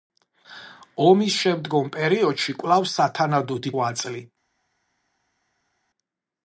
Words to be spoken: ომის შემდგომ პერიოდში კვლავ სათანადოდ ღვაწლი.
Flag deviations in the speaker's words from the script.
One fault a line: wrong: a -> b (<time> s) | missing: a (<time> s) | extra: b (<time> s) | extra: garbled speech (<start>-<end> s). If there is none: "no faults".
no faults